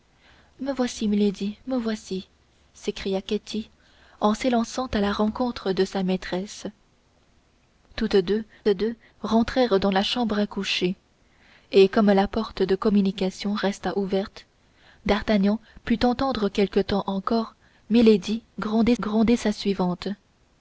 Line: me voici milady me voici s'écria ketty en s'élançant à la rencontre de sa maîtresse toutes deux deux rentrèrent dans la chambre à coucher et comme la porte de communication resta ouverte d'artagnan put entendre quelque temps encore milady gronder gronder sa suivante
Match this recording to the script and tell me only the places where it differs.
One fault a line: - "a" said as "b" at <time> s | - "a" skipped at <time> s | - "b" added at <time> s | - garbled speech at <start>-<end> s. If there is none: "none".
none